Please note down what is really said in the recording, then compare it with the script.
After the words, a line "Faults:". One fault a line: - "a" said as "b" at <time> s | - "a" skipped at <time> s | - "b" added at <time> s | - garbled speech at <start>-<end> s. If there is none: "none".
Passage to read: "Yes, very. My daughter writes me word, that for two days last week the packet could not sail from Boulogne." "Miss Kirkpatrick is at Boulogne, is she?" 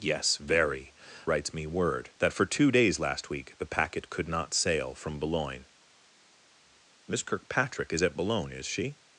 "Yes, very. Writes me word, that for two days last week the packet could not sail from Boulogne." "Miss Kirkpatrick is at Boulogne, is she?"
Faults:
- "My daughter" skipped at 0.9 s